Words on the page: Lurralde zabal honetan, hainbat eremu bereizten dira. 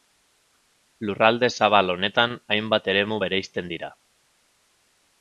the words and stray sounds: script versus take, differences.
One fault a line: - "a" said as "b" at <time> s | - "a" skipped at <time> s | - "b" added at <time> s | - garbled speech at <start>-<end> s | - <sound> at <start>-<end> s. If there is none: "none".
none